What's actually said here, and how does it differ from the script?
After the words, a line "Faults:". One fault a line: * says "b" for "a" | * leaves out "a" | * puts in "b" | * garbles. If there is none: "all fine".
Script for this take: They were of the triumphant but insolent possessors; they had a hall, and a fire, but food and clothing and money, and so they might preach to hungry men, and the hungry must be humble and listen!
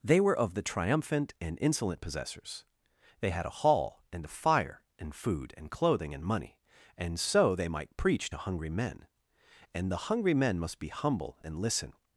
They were of the triumphant and insolent possessors; they had a hall, and a fire, and food and clothing and money, and so they might preach to hungry men, and the hungry men must be humble and listen!
Faults:
* says "and" for "but"
* says "and" for "but"
* puts in "men"